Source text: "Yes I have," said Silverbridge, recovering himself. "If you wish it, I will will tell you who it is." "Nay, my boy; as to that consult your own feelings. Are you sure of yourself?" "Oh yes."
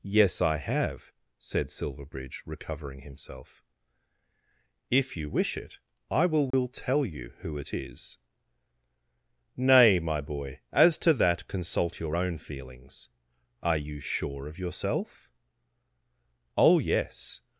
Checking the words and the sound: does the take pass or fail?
fail